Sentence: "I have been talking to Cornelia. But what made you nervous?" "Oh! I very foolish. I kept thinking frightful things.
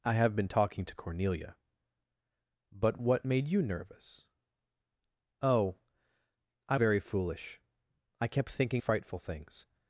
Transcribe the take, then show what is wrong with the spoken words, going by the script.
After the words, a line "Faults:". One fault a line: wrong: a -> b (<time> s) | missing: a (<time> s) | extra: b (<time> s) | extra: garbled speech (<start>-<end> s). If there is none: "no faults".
"I have been talking to Cornelia. But what made you nervous?" "Oh! I very foolish. I kept thinking frightful things.
Faults:
no faults